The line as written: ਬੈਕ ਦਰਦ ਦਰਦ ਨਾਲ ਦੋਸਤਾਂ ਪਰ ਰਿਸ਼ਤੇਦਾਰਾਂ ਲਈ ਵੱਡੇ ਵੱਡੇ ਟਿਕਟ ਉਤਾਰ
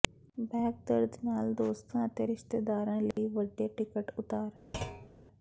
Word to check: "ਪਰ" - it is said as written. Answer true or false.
false